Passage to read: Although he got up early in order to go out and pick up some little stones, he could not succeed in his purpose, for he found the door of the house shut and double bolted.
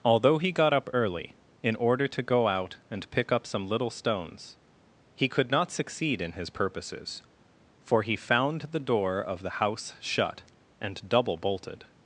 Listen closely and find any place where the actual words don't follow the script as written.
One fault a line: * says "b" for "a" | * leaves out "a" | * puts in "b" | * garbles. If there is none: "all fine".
* says "purposes" for "purpose"